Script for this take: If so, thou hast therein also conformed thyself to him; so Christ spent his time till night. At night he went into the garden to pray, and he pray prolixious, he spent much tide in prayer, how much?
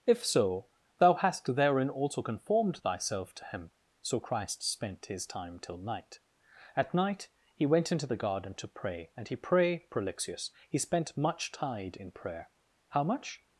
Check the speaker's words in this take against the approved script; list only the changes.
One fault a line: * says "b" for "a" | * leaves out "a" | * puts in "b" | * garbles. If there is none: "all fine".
all fine